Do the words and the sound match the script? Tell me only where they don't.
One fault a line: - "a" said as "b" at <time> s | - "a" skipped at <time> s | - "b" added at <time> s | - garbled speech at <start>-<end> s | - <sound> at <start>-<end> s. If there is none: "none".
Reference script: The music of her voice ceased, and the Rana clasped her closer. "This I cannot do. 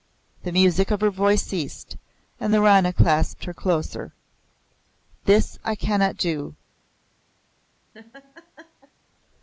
- laugh at 7.9-8.9 s